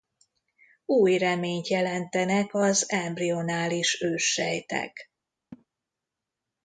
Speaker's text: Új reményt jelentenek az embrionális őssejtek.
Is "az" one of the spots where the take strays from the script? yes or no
no